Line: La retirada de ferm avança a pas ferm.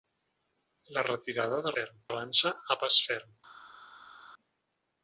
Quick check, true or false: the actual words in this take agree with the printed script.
true